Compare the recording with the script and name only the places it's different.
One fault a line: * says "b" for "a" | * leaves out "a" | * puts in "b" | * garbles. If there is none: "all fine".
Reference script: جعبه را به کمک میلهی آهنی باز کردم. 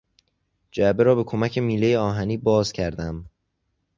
all fine